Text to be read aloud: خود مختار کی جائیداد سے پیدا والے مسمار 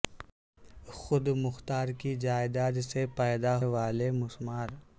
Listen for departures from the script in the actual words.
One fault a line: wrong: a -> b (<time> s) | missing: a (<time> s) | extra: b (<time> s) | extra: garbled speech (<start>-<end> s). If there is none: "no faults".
no faults